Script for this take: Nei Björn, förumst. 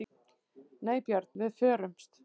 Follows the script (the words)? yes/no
no